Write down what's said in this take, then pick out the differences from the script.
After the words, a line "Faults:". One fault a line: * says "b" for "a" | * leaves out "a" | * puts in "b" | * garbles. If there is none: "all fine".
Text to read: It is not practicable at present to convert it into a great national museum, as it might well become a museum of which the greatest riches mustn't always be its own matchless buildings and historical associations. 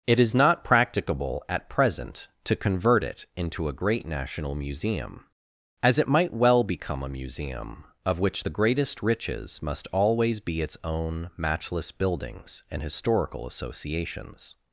It is not practicable at present to convert it into a great national museum, as it might well become a museum of which the greatest riches must always be its own matchless buildings and historical associations.
Faults:
* says "must" for "mustn't"